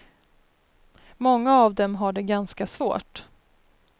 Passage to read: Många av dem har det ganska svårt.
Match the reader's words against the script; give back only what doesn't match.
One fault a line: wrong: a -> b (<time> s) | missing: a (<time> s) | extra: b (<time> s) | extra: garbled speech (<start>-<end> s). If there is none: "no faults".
no faults